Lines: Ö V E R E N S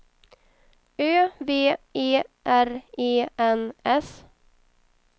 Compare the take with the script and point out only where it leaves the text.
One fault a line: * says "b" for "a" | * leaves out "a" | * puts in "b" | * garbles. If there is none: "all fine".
all fine